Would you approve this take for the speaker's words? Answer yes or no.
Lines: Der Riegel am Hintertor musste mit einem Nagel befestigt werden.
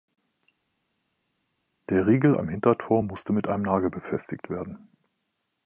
yes